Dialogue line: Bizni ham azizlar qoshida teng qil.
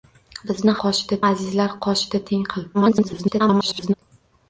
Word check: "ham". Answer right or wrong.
wrong